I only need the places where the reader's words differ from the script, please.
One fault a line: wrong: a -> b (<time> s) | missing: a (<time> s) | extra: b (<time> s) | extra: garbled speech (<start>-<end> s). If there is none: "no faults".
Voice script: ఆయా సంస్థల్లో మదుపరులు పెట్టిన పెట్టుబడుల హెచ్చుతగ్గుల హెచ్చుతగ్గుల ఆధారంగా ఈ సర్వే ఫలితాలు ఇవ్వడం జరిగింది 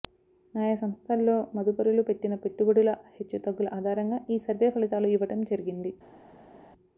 missing: హెచ్చుతగ్గుల (3.7 s)